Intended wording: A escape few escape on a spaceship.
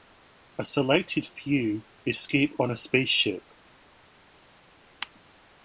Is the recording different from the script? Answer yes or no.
yes